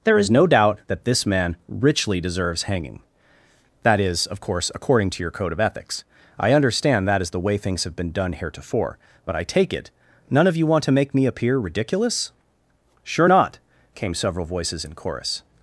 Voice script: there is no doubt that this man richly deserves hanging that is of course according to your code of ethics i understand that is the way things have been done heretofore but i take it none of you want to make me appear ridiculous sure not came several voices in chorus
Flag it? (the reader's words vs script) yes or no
no